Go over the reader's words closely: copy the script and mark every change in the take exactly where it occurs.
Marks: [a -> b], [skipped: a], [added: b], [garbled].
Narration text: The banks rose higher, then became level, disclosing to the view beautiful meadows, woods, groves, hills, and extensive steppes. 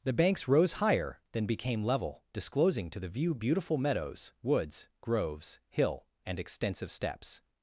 The banks rose higher, then became level, disclosing to the view beautiful meadows, woods, groves, [hills, -> hill] and extensive steppes.